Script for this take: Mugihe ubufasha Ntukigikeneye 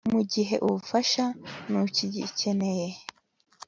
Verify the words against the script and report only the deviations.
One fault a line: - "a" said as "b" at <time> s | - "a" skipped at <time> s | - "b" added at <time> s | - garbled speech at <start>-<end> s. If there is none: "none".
none